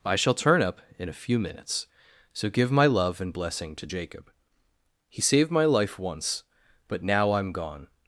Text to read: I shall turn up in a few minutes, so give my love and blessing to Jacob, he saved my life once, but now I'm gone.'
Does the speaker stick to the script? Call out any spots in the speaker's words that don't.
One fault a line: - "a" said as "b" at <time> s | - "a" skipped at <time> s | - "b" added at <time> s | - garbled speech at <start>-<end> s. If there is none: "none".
none